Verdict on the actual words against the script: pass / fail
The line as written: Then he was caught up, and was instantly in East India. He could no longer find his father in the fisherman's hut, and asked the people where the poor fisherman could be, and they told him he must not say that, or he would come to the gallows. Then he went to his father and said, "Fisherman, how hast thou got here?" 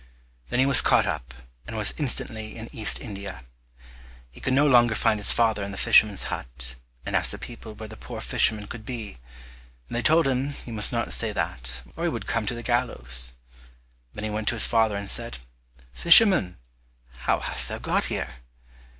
pass